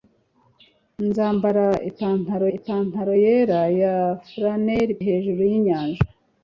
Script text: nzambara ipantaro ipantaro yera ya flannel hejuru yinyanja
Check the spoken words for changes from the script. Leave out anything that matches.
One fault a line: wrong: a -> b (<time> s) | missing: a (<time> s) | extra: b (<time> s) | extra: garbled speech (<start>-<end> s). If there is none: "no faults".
no faults